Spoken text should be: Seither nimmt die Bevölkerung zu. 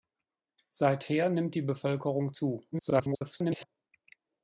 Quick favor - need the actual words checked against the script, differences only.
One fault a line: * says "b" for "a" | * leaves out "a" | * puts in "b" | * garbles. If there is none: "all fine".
* garbles